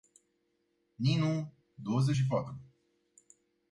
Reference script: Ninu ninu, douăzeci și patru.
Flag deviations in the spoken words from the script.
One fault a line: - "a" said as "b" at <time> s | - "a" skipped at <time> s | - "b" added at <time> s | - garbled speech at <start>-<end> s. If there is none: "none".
- "ninu" skipped at 1.5 s